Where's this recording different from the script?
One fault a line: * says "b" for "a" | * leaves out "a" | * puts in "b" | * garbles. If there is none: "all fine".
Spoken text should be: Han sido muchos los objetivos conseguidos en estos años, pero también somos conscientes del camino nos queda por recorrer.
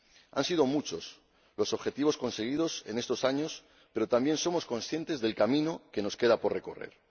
* puts in "que"